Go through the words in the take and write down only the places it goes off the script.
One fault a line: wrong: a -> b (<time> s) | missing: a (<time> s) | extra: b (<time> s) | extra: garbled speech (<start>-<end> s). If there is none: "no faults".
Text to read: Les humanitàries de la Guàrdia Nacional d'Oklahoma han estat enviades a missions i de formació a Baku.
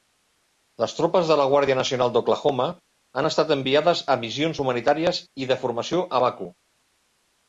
wrong: humanitàries -> tropes (1.0 s)
extra: humanitàries (4.7 s)